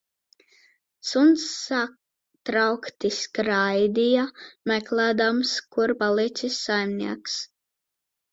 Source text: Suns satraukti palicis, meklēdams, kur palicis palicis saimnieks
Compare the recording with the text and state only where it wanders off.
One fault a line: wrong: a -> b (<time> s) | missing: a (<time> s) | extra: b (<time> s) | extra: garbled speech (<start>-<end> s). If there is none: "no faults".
wrong: palicis -> skraidīja (3.2 s)
missing: palicis (6.6 s)